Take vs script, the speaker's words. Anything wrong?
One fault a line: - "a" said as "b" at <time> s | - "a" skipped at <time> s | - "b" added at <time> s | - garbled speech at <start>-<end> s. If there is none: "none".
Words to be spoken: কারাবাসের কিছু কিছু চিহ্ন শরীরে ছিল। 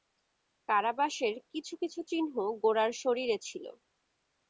- "গোরার" added at 2.6 s